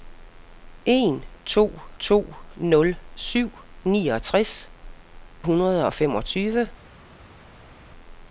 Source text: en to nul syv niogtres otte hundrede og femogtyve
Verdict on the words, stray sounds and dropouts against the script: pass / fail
fail